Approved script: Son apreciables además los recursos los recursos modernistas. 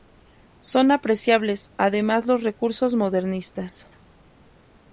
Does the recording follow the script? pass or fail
fail